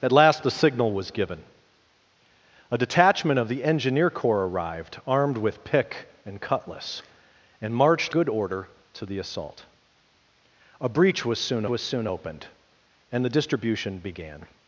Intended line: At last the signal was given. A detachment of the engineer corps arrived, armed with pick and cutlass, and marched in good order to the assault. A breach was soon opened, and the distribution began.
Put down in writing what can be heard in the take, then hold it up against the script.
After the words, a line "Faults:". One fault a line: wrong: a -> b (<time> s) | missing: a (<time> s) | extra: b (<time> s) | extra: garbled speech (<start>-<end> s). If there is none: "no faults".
At last the signal was given. A detachment of the engineer corps arrived, armed with pick and cutlass, and marched good order to the assault. A breach was soon was soon opened, and the distribution began.
Faults:
missing: in (8.2 s)
extra: was soon (11.7 s)